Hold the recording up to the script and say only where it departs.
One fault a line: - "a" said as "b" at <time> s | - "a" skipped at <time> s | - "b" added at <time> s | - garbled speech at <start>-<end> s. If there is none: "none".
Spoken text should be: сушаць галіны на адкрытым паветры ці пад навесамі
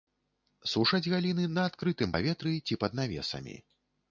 none